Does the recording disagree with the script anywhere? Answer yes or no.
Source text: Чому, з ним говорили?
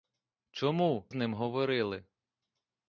no